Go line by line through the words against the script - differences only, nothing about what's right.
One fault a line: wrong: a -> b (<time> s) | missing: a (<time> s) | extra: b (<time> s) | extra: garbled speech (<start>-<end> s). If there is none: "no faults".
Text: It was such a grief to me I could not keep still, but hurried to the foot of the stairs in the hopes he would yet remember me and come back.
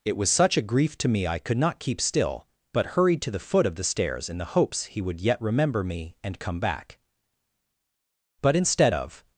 extra: But instead of (8.4 s)